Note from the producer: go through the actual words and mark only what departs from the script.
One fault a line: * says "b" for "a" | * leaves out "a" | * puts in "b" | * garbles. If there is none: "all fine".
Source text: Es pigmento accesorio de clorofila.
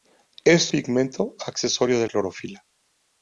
all fine